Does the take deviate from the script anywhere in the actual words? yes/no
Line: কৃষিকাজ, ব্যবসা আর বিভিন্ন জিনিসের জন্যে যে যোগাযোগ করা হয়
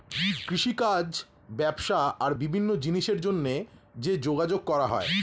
no